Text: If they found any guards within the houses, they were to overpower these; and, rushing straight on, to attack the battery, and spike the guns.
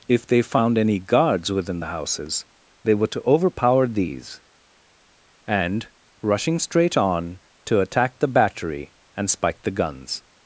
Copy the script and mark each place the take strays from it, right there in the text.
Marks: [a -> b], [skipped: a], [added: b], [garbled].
If they found any guards within the houses, they were to overpower these; and, rushing straight on, to attack the battery, and spike the guns.